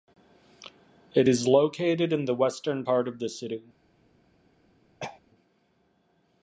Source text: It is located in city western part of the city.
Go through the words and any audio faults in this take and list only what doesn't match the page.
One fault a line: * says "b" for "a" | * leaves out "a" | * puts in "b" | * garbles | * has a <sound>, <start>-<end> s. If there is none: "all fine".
* says "the" for "city"
* has a throat clearing, 5.0-5.2 s